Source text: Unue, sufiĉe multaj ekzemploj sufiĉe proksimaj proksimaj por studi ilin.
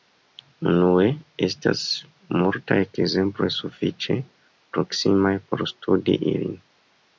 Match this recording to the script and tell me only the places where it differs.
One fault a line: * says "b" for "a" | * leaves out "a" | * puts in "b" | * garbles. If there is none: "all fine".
* says "estas" for "sufiĉe"
* leaves out "proksimaj"